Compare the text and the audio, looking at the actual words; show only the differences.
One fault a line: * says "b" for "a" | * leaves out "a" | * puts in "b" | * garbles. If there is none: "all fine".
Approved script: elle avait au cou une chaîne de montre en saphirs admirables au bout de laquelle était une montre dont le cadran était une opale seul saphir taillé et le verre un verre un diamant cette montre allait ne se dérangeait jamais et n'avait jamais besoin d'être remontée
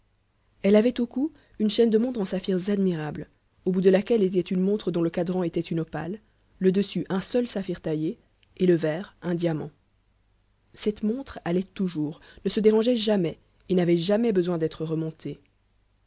* puts in "le dessus un"
* leaves out "verre un"
* puts in "toujours"